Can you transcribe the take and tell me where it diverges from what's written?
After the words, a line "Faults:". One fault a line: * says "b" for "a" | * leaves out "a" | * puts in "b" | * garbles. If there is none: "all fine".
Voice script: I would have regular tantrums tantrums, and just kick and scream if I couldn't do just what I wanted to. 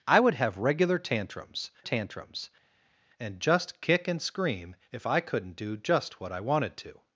I would have regular tantrums tantrums, and just kick and scream if I couldn't do just what I wanted to.
Faults:
all fine